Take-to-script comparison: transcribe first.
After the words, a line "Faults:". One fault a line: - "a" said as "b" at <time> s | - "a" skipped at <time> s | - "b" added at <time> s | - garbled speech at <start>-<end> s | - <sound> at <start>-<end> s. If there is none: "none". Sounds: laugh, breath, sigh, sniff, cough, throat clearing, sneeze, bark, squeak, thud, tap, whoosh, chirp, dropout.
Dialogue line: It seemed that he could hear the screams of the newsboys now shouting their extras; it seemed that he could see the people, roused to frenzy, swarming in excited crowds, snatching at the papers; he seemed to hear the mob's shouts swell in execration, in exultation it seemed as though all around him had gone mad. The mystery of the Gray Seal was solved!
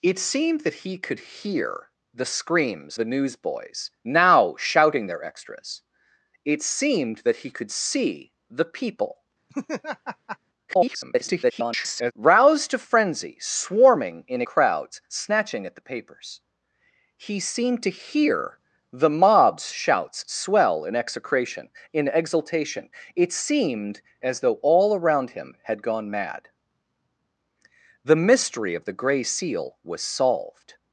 It seemed that he could hear the screams the newsboys now shouting their extras; it seemed that he could see the people, [garbled] roused to frenzy, swarming in crowds, snatching at the papers; he seemed to hear the mob's shouts swell in execration, in exultation it seemed as though all around him had gone mad. The mystery of the Gray Seal was solved!
Faults:
- "of" skipped at 3.0 s
- laugh at 9.5-10.4 s
- garbled speech at 10.7-12.1 s
- "excited" skipped at 14.4 s